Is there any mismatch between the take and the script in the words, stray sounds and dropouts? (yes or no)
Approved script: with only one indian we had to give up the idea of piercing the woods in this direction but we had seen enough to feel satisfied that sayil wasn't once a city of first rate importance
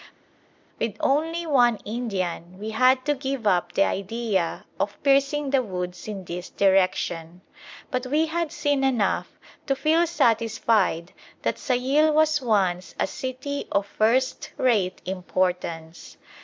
yes